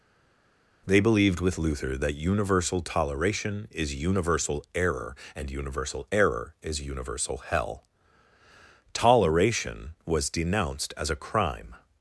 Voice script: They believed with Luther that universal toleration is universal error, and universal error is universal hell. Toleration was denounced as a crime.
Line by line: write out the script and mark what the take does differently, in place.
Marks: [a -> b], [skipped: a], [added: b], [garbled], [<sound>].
They believed with Luther that universal toleration is universal error, and universal error is universal hell. Toleration was denounced as a crime.